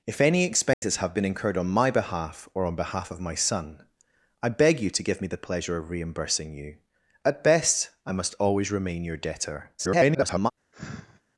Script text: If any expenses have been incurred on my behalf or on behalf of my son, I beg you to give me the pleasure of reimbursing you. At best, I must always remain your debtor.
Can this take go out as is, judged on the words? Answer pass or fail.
fail